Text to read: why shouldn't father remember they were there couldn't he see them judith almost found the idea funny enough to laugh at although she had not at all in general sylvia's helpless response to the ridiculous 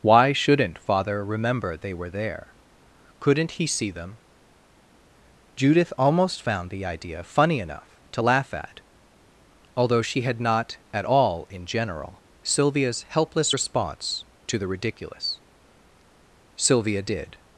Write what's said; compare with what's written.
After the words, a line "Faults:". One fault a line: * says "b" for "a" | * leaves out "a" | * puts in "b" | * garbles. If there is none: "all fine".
why shouldn't father remember they were there couldn't he see them judith almost found the idea funny enough to laugh at although she had not at all in general sylvia's helpless response to the ridiculous sylvia did
Faults:
* puts in "sylvia did"